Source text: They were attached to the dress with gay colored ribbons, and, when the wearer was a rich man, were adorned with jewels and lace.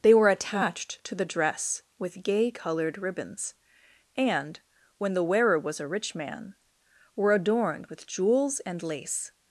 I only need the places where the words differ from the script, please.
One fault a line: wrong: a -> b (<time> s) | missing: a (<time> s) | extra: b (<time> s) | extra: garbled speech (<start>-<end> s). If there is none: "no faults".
no faults